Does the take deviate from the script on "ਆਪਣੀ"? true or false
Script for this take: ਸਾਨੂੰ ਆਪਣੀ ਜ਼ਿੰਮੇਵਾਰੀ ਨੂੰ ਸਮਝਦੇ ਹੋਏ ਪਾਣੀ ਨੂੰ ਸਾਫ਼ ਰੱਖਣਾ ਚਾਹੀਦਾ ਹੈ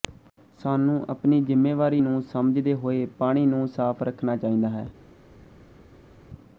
false